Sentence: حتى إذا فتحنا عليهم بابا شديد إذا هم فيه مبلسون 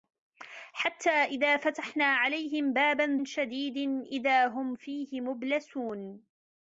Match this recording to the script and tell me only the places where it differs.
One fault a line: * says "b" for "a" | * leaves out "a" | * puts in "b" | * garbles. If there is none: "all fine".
all fine